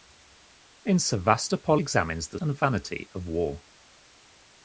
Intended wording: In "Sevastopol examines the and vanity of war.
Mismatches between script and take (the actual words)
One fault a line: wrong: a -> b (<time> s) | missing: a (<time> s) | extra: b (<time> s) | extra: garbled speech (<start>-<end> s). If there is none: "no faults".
no faults